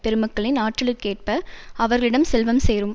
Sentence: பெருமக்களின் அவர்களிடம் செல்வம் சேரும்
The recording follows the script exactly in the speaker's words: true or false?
false